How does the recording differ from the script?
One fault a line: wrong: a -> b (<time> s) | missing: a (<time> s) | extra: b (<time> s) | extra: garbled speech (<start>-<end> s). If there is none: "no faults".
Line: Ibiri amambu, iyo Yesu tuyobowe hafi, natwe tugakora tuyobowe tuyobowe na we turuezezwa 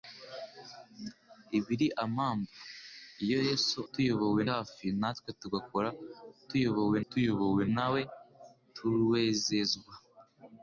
no faults